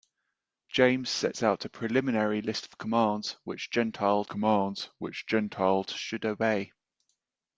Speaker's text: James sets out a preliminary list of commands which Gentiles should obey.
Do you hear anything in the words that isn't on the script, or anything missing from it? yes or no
yes